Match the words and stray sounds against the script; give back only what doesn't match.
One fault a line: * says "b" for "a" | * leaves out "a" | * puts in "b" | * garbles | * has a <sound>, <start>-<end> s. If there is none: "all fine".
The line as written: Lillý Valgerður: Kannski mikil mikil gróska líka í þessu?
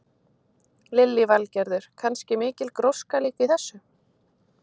* leaves out "mikil"